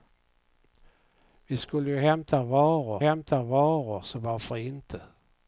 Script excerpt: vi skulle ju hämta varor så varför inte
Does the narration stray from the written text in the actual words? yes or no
yes